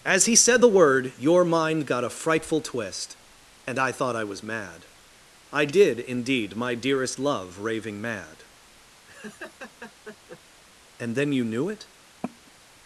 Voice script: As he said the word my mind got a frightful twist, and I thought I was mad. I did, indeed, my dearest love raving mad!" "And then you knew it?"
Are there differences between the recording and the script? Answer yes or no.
yes